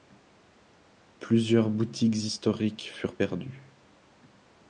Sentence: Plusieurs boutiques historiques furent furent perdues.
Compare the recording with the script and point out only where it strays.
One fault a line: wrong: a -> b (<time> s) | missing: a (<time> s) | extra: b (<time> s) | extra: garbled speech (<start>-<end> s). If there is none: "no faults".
missing: furent (3.2 s)